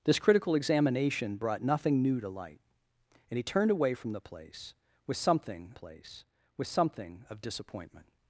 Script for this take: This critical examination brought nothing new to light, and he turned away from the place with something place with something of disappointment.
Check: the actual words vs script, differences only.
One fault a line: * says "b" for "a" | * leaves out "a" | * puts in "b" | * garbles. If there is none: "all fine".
all fine